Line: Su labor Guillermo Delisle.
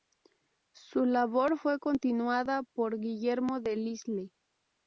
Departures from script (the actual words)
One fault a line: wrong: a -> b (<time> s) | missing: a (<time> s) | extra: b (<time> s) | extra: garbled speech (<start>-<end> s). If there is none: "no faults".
extra: fue continuada por (1.6 s)